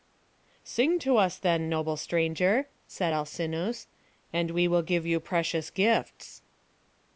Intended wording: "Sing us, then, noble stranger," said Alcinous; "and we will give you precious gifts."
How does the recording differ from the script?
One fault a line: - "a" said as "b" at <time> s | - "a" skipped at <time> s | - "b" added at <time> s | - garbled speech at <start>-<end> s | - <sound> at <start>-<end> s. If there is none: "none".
- "to" added at 1.0 s